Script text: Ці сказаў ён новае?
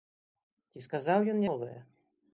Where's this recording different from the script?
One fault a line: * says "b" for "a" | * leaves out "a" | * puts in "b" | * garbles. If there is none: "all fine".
all fine